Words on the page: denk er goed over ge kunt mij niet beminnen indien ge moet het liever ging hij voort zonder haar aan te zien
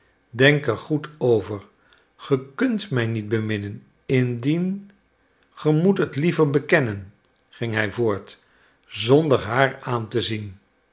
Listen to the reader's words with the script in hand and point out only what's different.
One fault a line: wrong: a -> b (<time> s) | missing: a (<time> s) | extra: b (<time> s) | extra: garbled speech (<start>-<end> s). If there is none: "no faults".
extra: bekennen (6.5 s)